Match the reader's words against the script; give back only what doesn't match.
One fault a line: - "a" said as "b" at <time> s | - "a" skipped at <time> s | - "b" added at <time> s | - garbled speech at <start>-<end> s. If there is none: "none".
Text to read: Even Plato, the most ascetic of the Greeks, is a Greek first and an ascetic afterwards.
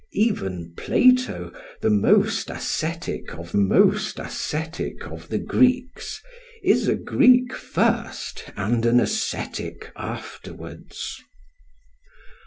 - "most ascetic of" added at 3.6 s